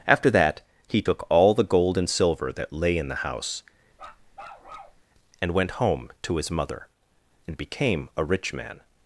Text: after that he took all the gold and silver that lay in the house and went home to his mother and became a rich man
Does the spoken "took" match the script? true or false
true